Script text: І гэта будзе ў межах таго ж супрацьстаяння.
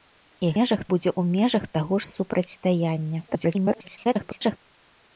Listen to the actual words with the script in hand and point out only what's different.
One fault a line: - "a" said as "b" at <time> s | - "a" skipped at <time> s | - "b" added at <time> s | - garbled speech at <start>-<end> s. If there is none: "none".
- "гэта" said as "межах" at 0.6 s
- garbled speech at 3.3-4.6 s